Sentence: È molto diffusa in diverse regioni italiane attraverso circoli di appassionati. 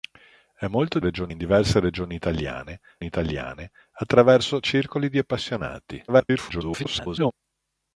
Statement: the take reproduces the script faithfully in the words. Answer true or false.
false